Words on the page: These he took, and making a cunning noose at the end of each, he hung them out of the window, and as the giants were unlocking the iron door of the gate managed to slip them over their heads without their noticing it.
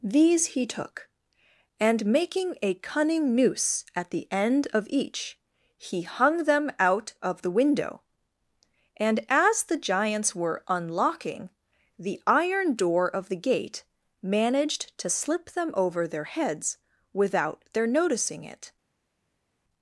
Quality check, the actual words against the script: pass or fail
pass